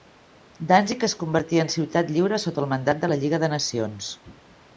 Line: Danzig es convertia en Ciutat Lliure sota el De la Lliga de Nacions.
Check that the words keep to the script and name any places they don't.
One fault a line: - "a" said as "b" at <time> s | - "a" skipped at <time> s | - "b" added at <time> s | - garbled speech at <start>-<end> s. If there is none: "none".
- "Mandat" added at 2.7 s